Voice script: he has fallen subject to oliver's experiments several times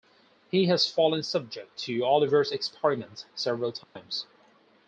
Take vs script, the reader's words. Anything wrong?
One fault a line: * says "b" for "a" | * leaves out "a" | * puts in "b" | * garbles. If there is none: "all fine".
all fine